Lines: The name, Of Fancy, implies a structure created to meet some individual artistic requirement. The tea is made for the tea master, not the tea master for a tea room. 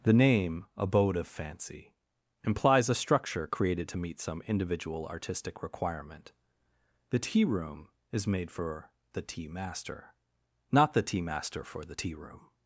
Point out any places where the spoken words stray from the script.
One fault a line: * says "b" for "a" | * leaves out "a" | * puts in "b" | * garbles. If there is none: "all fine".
* puts in "Abode"
* puts in "room"
* says "the" for "a"